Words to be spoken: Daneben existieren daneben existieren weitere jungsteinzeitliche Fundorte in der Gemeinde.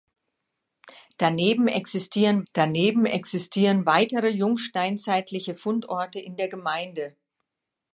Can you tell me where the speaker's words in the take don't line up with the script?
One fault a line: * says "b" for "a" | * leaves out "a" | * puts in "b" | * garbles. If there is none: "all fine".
all fine